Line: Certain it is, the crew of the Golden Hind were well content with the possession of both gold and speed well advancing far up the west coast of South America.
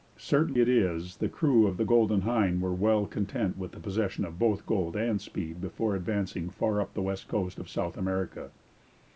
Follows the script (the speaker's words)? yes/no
no